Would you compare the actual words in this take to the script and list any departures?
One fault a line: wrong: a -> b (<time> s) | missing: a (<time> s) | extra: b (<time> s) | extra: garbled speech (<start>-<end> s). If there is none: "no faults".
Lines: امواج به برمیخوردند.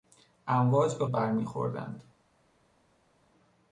no faults